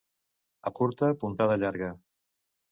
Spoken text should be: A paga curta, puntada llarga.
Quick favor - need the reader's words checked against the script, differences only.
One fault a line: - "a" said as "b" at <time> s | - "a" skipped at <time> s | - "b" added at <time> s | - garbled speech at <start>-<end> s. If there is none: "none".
- "paga" skipped at 0.7 s